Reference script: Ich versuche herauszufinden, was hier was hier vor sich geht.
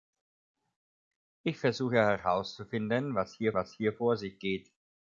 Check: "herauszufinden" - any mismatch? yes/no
no